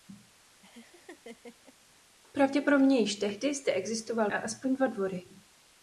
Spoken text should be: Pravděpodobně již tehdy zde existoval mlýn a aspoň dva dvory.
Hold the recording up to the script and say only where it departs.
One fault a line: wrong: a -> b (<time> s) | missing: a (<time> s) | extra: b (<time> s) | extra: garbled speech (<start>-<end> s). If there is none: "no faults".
missing: mlýn (4.3 s)